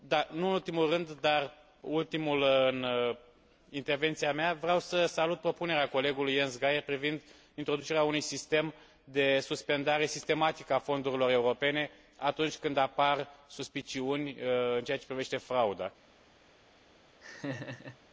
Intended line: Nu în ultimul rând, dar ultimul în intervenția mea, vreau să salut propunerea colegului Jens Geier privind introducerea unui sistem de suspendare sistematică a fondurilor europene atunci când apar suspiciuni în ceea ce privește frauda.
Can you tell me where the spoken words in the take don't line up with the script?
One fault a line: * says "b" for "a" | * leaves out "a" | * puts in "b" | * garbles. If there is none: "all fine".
all fine